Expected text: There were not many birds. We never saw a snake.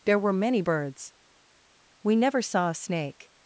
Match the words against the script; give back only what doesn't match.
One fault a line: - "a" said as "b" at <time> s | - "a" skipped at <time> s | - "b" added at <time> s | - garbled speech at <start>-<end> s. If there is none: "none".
- "not" skipped at 0.3 s